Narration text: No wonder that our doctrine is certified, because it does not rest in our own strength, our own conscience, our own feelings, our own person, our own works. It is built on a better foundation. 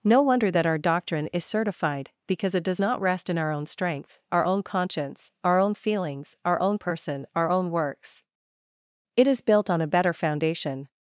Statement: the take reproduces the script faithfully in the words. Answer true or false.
true